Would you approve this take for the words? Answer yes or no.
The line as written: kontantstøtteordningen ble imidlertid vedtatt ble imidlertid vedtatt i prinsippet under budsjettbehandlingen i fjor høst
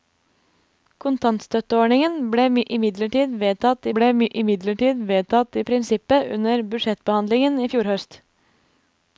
yes